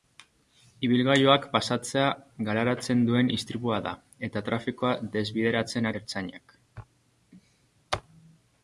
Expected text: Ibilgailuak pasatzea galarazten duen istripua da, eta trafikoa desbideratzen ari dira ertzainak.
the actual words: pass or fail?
fail